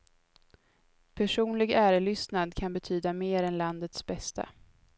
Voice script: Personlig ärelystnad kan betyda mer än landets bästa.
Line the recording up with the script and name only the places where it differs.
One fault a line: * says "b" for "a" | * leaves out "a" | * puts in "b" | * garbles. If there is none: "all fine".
all fine